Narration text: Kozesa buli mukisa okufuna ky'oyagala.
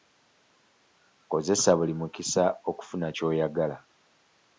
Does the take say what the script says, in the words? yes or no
yes